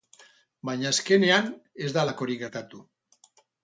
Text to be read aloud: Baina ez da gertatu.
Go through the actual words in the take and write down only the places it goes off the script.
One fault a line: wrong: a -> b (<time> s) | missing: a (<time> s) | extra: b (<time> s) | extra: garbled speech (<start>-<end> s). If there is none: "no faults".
extra: azkenean (0.9 s)
extra: halakorik (2.0 s)